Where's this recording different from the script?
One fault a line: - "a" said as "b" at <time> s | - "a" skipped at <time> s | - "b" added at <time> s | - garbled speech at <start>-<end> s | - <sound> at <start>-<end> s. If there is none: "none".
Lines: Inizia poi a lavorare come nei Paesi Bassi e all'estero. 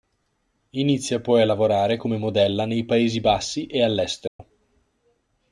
- "modella" added at 2.2 s
- dropout at 4.3-4.4 s